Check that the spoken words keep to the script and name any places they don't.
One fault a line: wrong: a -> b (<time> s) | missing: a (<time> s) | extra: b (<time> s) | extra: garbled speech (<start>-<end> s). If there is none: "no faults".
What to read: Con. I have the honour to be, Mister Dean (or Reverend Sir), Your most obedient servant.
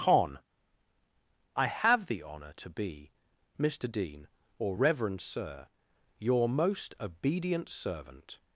no faults